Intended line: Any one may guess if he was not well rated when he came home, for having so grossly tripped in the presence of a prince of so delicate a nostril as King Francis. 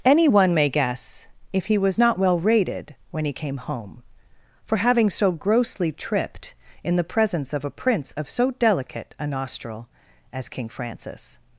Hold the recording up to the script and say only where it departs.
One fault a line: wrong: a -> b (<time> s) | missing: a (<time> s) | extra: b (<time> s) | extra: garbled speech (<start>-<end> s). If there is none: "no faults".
no faults